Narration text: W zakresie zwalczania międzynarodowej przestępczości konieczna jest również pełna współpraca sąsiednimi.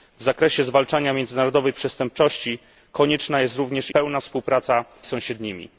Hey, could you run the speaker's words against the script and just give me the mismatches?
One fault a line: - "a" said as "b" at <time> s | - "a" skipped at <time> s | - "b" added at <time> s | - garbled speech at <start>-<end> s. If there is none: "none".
none